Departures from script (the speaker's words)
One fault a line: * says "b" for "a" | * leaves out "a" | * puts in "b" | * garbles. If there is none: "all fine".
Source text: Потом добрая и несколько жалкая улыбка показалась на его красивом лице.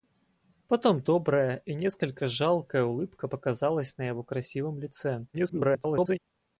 * garbles